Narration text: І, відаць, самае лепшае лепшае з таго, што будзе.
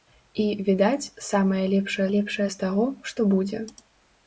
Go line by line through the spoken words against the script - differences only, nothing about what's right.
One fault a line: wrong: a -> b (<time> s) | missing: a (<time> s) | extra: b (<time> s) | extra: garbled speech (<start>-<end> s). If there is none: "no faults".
no faults